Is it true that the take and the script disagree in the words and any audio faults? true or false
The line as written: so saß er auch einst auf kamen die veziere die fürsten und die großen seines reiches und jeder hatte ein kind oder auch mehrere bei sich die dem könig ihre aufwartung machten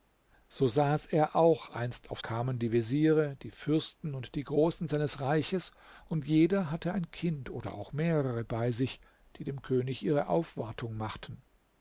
false